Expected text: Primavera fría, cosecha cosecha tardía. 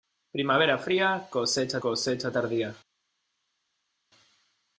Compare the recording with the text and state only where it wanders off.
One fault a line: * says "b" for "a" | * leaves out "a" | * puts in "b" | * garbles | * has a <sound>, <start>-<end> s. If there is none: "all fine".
all fine